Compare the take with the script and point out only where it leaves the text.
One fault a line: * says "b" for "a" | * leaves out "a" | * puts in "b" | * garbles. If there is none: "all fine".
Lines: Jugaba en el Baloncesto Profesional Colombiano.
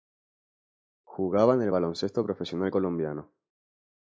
all fine